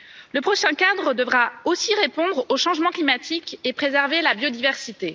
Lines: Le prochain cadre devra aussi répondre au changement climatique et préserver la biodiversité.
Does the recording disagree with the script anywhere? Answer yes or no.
no